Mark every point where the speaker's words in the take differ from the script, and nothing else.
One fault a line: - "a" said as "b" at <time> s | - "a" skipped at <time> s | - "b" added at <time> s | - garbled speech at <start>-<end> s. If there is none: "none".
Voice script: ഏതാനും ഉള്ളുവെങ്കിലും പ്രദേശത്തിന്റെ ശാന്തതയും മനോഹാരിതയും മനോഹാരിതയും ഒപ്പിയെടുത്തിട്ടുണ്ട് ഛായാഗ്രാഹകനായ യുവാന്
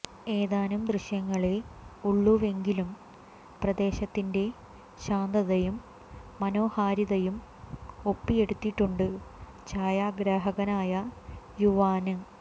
- "ദൃശ്യങ്ങളേ" added at 0.8 s
- "മനോഹാരിതയും" skipped at 7.4 s